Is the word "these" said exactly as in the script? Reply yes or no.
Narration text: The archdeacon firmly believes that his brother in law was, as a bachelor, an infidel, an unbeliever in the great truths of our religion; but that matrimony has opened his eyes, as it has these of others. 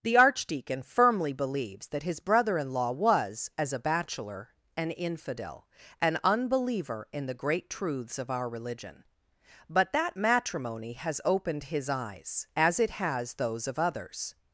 no